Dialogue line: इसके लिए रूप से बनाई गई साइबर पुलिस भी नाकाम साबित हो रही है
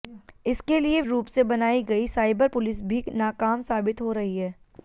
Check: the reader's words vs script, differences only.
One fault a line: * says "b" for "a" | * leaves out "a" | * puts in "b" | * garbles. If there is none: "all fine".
all fine